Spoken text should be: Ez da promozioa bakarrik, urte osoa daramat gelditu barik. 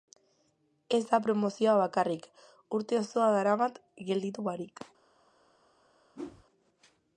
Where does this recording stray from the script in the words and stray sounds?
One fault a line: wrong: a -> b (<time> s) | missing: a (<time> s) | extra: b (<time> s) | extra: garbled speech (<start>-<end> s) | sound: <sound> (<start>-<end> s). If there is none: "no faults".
sound: whoosh (6.1-6.5 s)